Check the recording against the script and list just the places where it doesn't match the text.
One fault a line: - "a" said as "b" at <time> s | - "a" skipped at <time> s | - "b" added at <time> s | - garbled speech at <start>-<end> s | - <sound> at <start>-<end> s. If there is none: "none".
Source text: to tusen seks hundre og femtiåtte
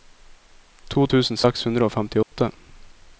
- dropout at 2.2-2.3 s